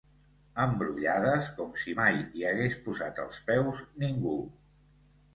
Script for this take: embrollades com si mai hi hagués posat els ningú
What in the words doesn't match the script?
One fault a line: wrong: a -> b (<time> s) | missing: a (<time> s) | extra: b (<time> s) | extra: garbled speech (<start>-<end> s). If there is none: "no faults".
extra: peus (3.5 s)